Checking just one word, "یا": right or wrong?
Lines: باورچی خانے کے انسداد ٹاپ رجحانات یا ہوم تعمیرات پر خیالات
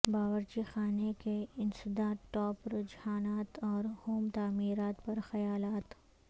wrong